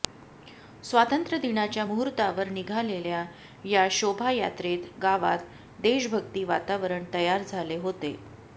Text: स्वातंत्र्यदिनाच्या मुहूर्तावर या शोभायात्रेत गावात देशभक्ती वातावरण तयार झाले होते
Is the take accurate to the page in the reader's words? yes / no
no